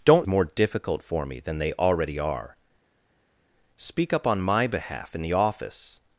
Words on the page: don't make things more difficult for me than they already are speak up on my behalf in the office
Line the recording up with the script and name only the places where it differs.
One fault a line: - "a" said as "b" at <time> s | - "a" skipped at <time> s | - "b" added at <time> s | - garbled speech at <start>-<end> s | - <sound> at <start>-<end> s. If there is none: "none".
- "make things" skipped at 0.3 s